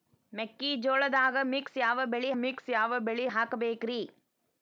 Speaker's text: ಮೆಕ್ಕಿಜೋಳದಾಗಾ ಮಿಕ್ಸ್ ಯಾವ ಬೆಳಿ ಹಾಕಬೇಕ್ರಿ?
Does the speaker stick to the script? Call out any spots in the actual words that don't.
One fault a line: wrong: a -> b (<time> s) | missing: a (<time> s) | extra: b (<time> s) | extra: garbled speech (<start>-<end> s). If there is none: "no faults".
extra: ಮಿಕ್ಸ್ ಯಾವ ಬೆಳಿ (2.3 s)